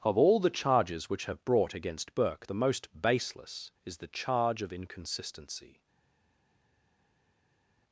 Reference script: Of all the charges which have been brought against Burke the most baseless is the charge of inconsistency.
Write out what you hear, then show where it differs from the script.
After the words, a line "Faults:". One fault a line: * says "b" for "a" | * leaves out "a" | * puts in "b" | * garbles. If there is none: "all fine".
Of all the charges which have brought against Burke the most baseless is the charge of inconsistency.
Faults:
* leaves out "been"